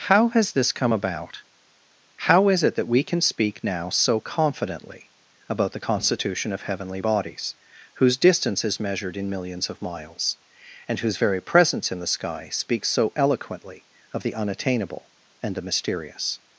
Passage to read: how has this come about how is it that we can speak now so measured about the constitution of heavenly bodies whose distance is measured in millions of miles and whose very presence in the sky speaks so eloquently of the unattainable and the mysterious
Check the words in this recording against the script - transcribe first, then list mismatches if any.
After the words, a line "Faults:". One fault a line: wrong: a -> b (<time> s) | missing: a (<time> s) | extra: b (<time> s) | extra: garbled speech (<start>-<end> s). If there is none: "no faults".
how has this come about how is it that we can speak now so confidently about the constitution of heavenly bodies whose distance is measured in millions of miles and whose very presence in the sky speaks so eloquently of the unattainable and the mysterious
Faults:
wrong: measured -> confidently (4.2 s)